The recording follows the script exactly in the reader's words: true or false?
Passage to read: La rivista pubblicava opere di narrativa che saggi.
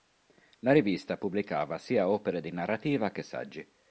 false